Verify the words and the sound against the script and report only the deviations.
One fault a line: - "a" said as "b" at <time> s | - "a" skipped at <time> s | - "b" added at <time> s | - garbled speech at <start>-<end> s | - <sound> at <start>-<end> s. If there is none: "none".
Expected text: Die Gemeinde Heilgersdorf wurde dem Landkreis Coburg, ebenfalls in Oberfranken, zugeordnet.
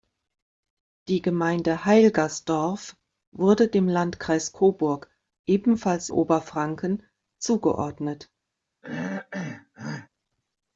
- "in" skipped at 6.1 s
- throat clearing at 8.8-10.1 s